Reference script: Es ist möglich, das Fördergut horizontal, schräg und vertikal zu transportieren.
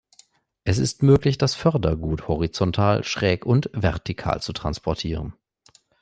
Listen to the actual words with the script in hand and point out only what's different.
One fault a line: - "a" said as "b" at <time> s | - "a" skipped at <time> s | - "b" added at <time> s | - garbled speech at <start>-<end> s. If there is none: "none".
none